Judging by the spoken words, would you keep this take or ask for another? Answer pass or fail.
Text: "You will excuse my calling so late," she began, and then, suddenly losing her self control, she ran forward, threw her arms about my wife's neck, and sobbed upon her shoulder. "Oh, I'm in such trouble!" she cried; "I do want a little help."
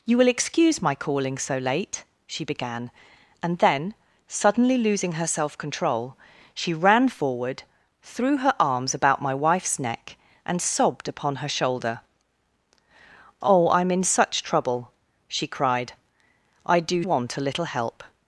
pass